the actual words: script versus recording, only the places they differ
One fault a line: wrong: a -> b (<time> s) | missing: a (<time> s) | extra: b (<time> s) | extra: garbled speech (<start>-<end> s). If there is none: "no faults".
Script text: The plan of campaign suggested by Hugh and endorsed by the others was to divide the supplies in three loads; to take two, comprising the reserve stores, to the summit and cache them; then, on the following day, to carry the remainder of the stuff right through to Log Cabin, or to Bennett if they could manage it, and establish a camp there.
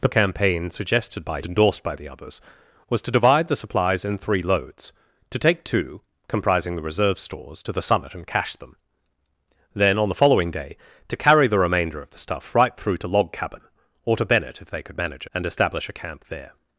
missing: plan of (0.1 s)
missing: Hugh and (1.4 s)
missing: it (15.3 s)